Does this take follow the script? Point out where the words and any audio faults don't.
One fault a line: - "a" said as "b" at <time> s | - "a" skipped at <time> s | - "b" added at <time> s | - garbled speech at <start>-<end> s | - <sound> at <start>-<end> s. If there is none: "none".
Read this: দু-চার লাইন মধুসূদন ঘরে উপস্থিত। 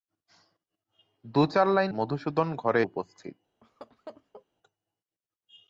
- laugh at 3.6-4.5 s